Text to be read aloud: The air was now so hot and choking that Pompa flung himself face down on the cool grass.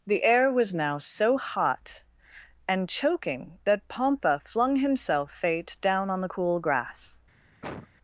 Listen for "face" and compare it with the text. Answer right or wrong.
wrong